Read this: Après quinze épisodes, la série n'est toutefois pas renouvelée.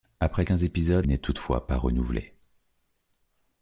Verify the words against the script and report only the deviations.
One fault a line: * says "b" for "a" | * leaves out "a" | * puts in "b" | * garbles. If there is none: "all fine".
* leaves out "la série"